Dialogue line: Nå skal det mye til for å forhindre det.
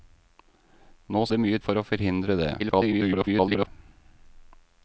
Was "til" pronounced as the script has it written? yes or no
no